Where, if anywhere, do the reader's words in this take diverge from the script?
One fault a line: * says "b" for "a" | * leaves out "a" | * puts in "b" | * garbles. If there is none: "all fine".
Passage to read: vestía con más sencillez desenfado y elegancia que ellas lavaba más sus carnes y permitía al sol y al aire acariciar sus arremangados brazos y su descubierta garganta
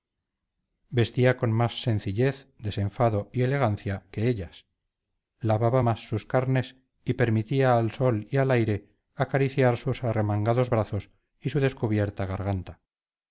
all fine